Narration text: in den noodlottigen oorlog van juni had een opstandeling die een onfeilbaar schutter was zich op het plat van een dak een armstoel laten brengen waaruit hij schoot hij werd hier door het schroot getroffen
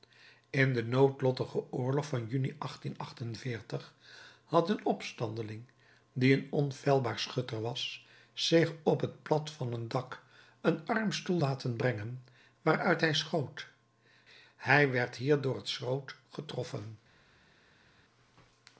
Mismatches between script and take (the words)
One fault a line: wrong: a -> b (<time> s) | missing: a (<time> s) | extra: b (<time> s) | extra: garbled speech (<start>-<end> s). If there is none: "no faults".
no faults